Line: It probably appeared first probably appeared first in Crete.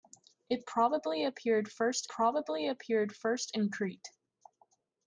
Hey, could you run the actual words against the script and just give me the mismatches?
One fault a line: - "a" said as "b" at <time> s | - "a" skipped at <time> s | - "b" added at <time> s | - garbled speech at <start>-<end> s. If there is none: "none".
none